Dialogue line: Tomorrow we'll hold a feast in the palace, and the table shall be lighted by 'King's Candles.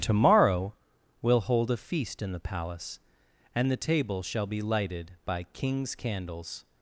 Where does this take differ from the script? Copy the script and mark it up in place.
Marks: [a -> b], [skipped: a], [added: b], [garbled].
Tomorrow we'll hold a feast in the palace, and the table shall be lighted by 'King's Candles.